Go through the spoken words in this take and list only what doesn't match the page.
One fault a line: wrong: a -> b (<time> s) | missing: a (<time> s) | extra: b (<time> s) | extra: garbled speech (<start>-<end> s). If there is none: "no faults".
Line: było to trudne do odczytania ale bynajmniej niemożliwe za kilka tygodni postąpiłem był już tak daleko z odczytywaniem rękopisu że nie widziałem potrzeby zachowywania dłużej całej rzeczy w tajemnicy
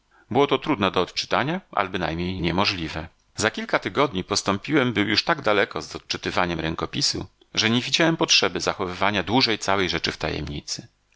no faults